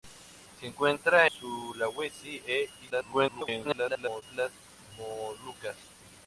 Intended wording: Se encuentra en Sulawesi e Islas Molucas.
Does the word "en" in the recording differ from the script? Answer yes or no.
yes